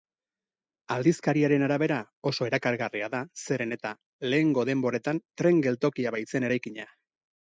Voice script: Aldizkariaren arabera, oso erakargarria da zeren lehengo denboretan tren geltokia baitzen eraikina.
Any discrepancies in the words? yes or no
yes